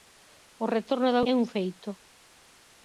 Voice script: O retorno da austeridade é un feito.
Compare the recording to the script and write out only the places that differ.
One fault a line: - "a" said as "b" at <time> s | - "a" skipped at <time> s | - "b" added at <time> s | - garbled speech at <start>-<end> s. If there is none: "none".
- "austeridade" skipped at 1.2 s